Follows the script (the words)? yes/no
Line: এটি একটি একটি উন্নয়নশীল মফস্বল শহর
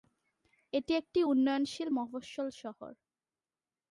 no